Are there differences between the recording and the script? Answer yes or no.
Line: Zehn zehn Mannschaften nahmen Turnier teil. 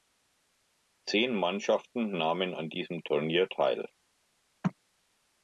yes